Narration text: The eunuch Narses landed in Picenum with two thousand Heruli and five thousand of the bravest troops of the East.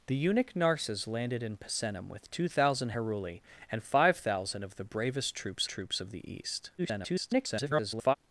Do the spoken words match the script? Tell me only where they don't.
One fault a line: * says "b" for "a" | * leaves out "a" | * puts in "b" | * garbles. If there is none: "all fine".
* puts in "troops"
* garbles